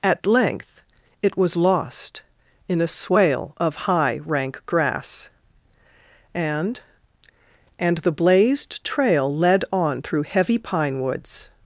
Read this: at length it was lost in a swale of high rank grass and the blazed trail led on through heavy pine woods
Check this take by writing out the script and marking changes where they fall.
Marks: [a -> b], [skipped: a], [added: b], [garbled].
at length it was lost in a swale of high rank grass and [added: and] the blazed trail led on through heavy pine woods